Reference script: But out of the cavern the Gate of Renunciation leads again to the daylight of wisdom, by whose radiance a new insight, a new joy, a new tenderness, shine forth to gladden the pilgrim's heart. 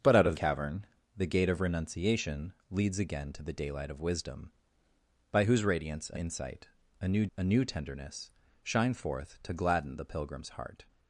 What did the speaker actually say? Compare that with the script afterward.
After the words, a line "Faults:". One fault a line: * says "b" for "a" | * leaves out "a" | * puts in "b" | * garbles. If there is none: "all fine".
But out of cavern the Gate of Renunciation leads again to the daylight of wisdom, by whose radiance a insight, a new a new tenderness, shine forth to gladden the pilgrim's heart.
Faults:
* leaves out "the"
* leaves out "new"
* leaves out "joy"